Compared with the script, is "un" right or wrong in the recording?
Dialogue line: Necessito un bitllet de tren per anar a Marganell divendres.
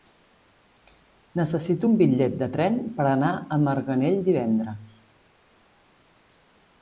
right